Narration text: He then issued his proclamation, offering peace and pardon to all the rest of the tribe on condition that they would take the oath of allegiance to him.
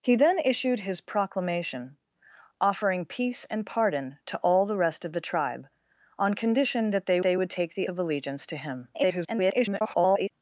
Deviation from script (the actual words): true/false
true